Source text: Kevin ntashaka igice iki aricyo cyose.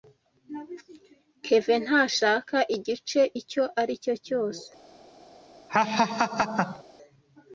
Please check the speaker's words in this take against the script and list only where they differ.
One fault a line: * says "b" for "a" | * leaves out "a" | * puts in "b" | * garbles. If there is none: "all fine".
* says "icyo" for "iki"